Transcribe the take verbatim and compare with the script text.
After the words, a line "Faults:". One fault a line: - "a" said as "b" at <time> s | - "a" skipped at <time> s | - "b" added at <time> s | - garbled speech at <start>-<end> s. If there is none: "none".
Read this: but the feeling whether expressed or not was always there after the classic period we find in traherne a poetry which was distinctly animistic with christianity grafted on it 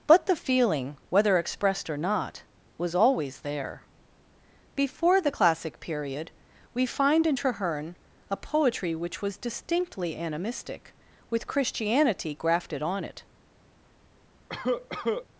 but the feeling whether expressed or not was always there before the classic period we find in traherne a poetry which was distinctly animistic with christianity grafted on it
Faults:
- "after" said as "before" at 4.8 s